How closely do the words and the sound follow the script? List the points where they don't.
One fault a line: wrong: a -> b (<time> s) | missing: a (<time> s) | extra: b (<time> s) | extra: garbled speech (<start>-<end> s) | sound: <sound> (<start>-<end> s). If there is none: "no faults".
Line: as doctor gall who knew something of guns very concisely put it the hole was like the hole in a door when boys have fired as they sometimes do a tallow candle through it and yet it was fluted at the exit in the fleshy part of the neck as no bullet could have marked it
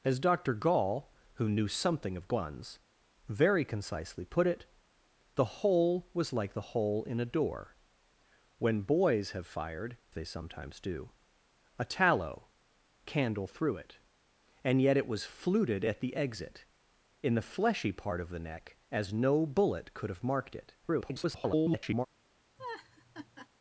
missing: as (10.0 s)
extra: garbled speech (20.8-22.1 s)
sound: laugh (22.6-23.5 s)